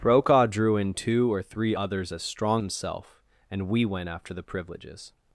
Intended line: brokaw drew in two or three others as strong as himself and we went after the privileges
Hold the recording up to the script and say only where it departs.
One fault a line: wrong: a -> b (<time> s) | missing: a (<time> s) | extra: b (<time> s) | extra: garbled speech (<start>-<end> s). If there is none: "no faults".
missing: as (2.6 s)